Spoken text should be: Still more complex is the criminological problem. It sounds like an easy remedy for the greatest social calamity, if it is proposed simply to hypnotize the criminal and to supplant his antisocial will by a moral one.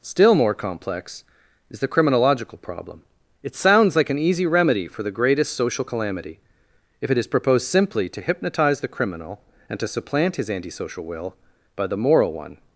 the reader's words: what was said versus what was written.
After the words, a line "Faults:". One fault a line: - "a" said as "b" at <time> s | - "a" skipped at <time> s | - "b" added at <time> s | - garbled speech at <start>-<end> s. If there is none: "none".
Still more complex is the criminological problem. It sounds like an easy remedy for the greatest social calamity, if it is proposed simply to hypnotize the criminal and to supplant his antisocial will by the moral one.
Faults:
- "a" said as "the" at 11.9 s